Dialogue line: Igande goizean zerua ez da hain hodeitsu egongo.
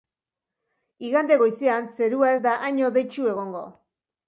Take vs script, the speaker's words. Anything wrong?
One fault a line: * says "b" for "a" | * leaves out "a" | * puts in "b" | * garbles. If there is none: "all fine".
all fine